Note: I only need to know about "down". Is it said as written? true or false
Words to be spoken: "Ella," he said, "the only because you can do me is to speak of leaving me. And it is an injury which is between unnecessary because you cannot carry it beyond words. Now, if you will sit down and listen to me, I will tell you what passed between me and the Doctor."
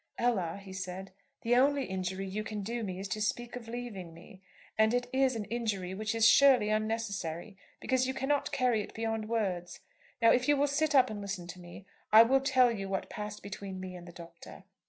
false